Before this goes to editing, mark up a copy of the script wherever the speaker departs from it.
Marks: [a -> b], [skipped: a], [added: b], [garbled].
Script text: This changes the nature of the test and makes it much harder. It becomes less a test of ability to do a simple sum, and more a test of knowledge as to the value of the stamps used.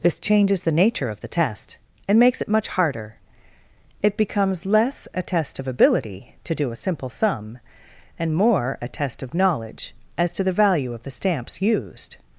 This changes the nature of the test and makes it much harder. It becomes less a test of ability to do a simple sum, and more a test of knowledge as to the value of the stamps used.